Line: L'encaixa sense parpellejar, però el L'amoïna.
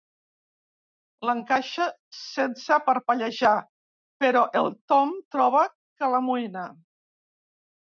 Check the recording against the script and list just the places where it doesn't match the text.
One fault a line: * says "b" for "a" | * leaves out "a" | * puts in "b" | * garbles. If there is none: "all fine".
* puts in "Tom troba que"